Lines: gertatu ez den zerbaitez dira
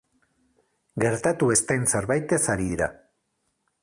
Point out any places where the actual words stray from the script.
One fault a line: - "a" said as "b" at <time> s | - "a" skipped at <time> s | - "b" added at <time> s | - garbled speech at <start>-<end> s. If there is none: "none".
- "ari" added at 2.5 s